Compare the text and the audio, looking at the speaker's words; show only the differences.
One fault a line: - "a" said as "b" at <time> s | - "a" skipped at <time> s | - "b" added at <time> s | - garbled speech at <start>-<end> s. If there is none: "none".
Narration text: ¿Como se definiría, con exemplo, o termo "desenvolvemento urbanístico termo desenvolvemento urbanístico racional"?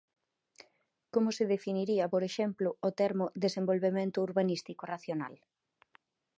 - "con" said as "por" at 2.1 s
- "termo desenvolvemento urbanístico" skipped at 4.8 s